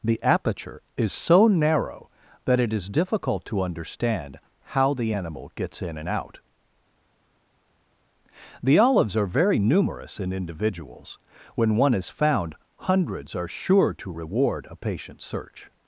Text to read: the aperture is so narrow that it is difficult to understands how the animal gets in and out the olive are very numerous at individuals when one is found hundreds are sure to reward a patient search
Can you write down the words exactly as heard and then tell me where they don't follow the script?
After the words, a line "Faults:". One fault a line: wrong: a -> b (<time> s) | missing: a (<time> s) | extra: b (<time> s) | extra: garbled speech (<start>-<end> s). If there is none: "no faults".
the aperture is so narrow that it is difficult to understand how the animal gets in and out the olives are very numerous in individuals when one is found hundreds are sure to reward a patient search
Faults:
wrong: understands -> understand (3.6 s)
wrong: olive -> olives (8.8 s)
wrong: at -> in (10.2 s)